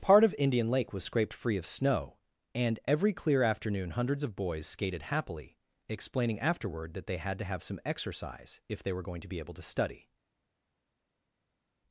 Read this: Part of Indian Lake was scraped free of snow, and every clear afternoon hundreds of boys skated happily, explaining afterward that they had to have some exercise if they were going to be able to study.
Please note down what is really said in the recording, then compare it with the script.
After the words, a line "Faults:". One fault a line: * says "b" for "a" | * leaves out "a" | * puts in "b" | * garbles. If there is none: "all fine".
Part of Indian Lake was scraped free of snow, and every clear afternoon hundreds of boys skated happily, explaining afterward that they had to have some exercise if they were going to be able to study.
Faults:
all fine